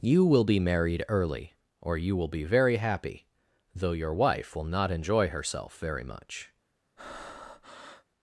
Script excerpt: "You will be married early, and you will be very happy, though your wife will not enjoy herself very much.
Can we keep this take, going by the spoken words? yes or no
no